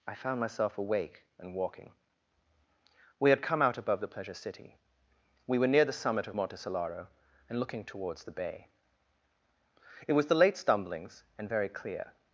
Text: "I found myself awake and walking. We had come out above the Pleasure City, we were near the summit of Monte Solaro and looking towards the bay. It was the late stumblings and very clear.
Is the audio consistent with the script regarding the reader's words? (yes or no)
yes